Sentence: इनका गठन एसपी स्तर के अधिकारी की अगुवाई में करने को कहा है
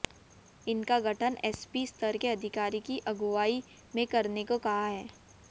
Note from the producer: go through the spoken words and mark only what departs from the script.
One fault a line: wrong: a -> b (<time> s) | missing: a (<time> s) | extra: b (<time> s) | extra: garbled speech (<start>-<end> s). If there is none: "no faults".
no faults